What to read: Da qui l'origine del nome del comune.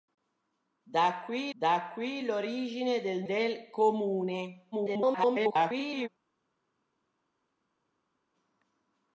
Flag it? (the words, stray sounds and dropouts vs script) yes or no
yes